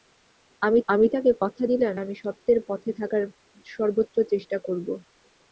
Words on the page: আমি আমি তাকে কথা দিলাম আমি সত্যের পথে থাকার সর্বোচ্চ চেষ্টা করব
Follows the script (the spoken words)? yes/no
yes